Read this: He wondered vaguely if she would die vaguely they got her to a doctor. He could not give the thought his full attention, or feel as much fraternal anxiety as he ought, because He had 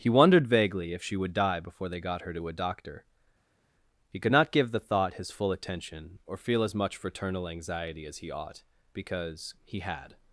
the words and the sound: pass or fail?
fail